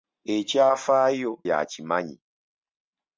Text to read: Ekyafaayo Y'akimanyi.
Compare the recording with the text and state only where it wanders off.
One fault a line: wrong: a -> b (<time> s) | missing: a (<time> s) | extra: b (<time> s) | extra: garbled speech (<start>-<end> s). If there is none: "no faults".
no faults